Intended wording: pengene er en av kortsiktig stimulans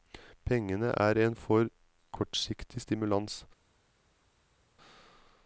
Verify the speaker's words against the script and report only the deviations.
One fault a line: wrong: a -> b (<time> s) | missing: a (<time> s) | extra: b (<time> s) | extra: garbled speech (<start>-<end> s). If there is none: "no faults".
wrong: av -> for (1.3 s)